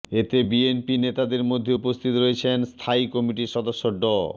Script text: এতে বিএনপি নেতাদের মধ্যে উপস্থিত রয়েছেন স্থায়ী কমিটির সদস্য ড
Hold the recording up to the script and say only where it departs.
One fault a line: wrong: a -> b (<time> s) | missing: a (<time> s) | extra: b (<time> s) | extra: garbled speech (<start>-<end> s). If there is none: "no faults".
no faults